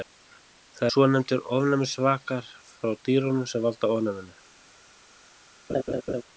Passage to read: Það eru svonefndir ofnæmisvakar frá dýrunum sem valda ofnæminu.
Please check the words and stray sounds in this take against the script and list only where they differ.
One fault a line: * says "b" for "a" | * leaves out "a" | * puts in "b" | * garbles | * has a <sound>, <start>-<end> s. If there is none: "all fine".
* leaves out "eru"
* has a laugh, 5.7-6.2 s